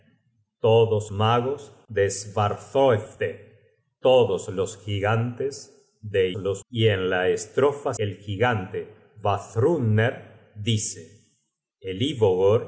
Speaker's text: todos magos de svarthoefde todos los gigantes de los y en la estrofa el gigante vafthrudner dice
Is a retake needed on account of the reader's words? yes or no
no